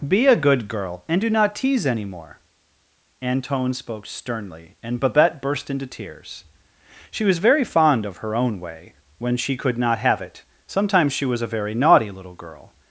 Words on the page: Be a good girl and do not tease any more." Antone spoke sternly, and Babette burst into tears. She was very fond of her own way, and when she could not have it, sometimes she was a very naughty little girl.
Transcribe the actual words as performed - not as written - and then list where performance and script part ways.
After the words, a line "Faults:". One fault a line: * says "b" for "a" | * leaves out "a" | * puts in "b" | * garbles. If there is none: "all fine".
Be a good girl and do not tease any more." Antone spoke sternly, and Babette burst into tears. She was very fond of her own way, when she could not have it, sometimes she was a very naughty little girl.
Faults:
* leaves out "and"